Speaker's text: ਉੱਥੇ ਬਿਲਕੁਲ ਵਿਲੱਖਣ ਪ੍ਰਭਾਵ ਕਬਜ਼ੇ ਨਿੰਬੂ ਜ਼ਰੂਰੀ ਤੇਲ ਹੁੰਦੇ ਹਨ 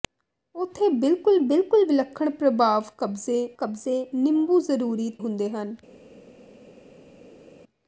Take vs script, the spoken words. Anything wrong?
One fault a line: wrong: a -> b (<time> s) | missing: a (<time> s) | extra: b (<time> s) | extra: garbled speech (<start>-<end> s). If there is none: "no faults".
extra: ਬਿਲਕੁਲ (1.4 s)
extra: ਕਬਜ਼ੇ (3.6 s)
missing: ਤੇਲ (5.1 s)